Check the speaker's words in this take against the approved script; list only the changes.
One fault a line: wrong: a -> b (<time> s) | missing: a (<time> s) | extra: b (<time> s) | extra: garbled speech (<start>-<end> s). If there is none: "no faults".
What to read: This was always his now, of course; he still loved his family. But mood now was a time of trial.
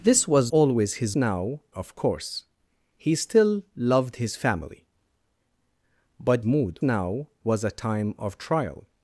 no faults